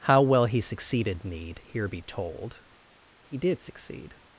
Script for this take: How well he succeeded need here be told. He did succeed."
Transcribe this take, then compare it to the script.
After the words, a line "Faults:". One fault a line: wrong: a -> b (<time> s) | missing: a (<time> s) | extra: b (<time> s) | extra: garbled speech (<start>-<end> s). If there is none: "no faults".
How well he succeeded need here be told. He did succeed."
Faults:
no faults